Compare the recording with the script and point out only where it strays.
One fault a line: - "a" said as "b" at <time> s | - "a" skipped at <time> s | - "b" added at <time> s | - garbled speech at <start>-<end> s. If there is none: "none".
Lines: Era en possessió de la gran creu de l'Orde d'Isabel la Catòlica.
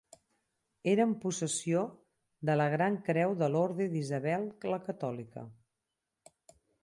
none